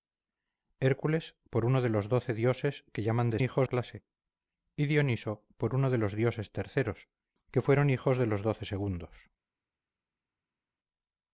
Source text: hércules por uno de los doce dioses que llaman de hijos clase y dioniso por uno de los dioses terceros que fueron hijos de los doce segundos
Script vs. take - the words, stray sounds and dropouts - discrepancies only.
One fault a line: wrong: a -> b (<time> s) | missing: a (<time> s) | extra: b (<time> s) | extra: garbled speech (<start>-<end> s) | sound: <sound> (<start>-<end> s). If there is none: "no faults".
no faults